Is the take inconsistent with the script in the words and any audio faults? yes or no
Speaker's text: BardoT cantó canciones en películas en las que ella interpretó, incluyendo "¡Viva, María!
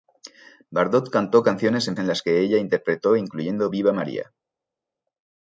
yes